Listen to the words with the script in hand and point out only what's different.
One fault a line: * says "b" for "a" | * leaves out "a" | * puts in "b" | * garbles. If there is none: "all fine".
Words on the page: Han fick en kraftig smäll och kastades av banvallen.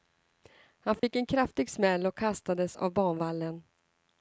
all fine